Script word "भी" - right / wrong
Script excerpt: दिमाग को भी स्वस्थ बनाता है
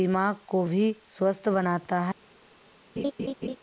right